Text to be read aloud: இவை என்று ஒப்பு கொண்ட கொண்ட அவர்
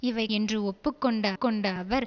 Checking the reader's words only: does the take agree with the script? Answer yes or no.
yes